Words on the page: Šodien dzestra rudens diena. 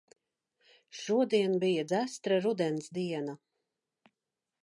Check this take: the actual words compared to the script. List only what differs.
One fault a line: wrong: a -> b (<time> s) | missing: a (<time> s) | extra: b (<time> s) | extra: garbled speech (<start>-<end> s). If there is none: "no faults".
extra: bija (1.6 s)